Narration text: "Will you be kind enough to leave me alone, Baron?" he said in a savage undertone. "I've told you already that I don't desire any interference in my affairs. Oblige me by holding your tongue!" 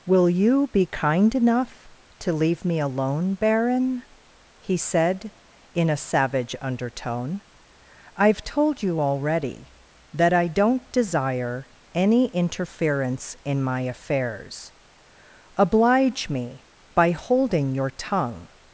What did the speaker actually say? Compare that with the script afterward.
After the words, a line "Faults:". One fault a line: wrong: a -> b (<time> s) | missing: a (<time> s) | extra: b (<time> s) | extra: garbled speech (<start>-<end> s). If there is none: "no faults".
"Will you be kind enough to leave me alone, Baron?" he said in a savage undertone. "I've told you already that I don't desire any interference in my affairs. Oblige me by holding your tongue!"
Faults:
no faults